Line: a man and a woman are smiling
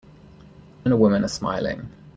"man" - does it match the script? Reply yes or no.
no